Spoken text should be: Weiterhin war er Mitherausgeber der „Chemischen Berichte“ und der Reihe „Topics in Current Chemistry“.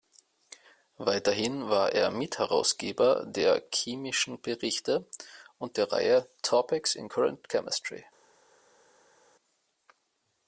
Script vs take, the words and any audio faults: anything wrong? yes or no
no